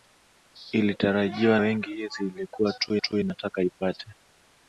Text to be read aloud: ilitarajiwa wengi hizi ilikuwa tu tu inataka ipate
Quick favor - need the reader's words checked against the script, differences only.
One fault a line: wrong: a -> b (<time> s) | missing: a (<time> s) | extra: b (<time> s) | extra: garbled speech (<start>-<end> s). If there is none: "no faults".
no faults